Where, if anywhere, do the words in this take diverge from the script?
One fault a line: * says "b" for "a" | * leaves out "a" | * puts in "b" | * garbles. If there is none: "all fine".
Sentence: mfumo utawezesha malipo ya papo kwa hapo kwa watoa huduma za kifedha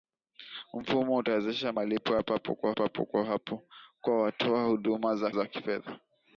* puts in "papo kwa"
* puts in "za"